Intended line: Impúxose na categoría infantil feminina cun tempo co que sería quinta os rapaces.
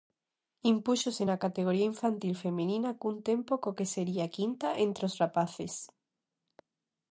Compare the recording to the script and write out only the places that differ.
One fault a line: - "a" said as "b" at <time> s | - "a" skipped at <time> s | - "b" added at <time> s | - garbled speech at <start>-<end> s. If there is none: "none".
- "entre" added at 4.8 s